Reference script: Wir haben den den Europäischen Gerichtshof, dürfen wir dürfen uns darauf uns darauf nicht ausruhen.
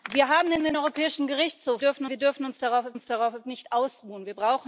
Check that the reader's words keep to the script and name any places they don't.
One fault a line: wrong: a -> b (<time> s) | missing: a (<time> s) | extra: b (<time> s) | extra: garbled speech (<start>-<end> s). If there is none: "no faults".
no faults